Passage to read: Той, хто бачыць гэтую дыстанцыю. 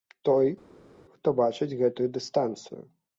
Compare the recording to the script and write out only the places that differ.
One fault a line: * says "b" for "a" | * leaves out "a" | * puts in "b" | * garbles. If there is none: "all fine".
all fine